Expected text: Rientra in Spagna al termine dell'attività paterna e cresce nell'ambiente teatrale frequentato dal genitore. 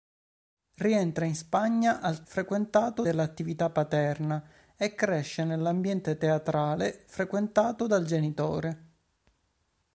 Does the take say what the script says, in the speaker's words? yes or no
no